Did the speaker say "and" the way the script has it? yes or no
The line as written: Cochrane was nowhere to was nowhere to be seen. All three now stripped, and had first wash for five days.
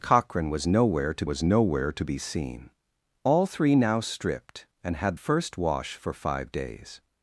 yes